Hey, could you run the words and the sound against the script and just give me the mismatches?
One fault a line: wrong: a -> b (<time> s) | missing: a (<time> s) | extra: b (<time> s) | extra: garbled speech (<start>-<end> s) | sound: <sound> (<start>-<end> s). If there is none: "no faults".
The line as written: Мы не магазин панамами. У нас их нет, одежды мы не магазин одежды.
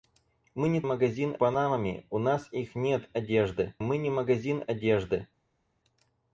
no faults